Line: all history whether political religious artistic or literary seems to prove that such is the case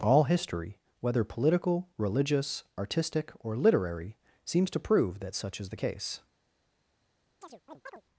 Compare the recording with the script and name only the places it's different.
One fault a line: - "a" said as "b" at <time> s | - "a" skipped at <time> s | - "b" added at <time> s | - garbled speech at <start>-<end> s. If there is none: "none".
none